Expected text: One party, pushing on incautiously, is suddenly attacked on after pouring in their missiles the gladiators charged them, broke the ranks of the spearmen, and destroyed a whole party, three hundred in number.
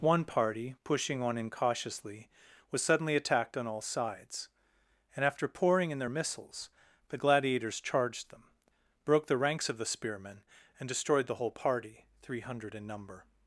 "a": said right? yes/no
no